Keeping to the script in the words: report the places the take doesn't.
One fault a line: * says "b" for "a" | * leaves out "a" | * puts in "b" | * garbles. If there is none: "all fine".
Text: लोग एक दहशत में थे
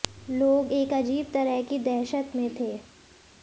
* puts in "अजीब तरह की"